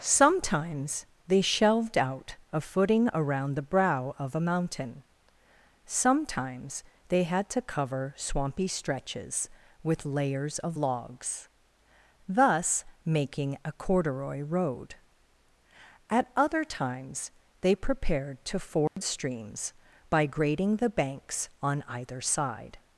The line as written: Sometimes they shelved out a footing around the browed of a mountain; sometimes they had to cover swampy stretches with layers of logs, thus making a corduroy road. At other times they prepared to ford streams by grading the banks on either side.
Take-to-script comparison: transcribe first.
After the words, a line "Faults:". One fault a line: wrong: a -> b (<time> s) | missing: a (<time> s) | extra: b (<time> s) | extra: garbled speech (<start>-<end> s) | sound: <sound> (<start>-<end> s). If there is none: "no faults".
Sometimes they shelved out a footing around the brow of a mountain; sometimes they had to cover swampy stretches with layers of logs, thus making a corduroy road. At other times they prepared to ford streams by grading the banks on either side.
Faults:
wrong: browed -> brow (3.6 s)
sound: dropout (18.9-19.0 s)